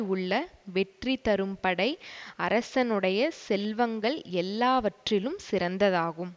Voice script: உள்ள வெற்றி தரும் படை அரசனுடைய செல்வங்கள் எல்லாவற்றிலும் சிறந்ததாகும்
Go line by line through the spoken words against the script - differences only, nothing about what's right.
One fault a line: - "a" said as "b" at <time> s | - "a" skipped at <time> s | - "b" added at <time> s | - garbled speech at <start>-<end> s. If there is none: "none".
none